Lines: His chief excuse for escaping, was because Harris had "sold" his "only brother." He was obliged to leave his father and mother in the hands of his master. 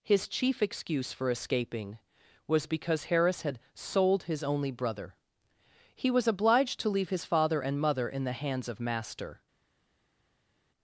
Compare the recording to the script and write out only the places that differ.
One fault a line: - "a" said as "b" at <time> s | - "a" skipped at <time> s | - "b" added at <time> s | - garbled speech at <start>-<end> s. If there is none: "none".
- "his" skipped at 8.8 s